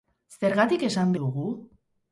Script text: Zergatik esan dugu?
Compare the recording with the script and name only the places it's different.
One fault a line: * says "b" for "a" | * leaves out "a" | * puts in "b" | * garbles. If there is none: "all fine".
all fine